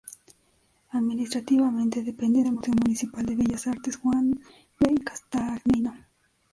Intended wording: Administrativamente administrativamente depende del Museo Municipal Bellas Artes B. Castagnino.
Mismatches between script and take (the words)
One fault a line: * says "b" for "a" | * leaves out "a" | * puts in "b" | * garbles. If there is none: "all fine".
* leaves out "administrativamente"
* puts in "de"
* puts in "Juan"